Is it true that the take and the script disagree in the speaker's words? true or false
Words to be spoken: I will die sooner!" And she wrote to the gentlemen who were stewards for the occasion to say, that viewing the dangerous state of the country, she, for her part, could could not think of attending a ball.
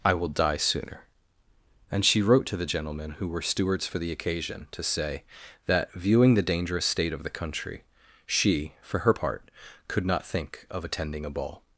true